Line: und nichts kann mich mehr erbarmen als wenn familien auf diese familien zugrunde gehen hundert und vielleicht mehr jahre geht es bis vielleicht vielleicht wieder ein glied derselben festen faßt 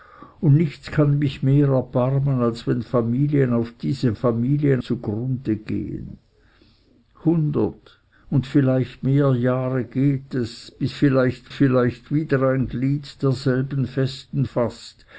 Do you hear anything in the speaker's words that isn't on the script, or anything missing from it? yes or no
no